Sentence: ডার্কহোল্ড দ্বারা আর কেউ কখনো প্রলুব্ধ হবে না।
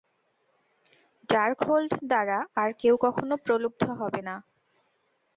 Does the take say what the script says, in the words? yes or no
yes